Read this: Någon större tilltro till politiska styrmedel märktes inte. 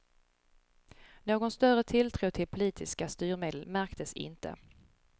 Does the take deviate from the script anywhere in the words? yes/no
no